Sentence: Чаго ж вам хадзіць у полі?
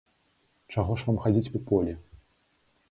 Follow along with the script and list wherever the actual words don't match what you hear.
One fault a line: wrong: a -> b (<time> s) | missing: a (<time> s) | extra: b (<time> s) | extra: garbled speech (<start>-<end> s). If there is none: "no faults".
no faults